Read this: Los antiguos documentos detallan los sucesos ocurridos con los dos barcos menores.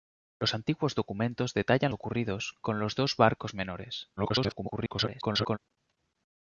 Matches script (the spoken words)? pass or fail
fail